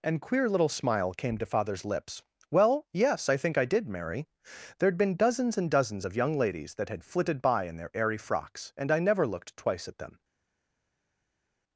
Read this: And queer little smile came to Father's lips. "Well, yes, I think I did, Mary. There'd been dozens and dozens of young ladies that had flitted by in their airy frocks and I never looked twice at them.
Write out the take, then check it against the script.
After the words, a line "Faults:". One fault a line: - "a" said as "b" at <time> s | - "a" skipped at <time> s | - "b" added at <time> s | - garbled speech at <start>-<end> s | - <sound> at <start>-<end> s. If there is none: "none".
And queer little smile came to Father's lips. "Well, yes, I think I did, Mary. There'd been dozens and dozens of young ladies that had flitted by in their airy frocks and I never looked twice at them.
Faults:
none